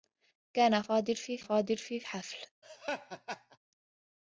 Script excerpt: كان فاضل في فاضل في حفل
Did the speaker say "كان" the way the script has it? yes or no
yes